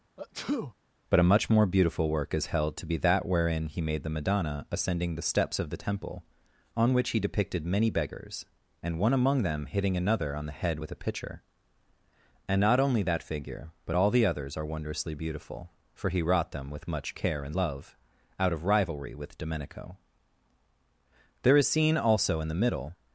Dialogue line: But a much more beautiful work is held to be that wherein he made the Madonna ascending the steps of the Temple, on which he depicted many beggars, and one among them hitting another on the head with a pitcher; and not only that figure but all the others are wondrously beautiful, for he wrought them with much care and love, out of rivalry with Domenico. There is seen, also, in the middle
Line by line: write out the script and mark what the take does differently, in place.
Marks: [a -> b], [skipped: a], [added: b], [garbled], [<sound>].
[sneeze] But a much more beautiful work is held to be that wherein he made the Madonna ascending the steps of the Temple, on which he depicted many beggars, and one among them hitting another on the head with a pitcher; and not only that figure but all the others are wondrously beautiful, for he wrought them with much care and love, out of rivalry with Domenico. There is seen, also, in the middle